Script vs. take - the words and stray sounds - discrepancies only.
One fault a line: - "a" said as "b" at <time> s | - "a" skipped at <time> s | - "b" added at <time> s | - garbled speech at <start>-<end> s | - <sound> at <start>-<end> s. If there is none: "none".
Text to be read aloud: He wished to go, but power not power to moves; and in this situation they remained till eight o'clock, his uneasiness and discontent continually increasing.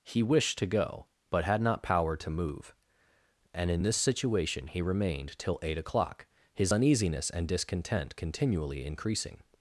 - "power" said as "had" at 1.4 s
- "moves" said as "move" at 2.3 s
- "they" said as "he" at 4.7 s